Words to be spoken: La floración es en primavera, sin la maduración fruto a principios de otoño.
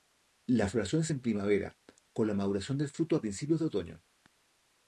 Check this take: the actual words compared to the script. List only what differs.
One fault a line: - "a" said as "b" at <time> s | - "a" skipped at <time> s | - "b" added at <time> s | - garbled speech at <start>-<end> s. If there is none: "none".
- "sin" said as "con" at 2.1 s
- "del" added at 2.8 s